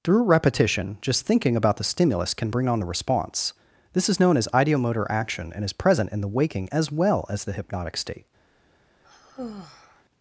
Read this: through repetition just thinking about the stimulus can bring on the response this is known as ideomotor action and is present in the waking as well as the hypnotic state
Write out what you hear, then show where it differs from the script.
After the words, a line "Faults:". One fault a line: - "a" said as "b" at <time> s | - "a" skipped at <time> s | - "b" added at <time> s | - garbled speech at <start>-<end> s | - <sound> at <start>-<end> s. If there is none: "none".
through repetition just thinking about the stimulus can bring on the response this is known as ideomotor action and is present in the waking as well as the hypnotic state
Faults:
- sigh at 9.0-10.0 s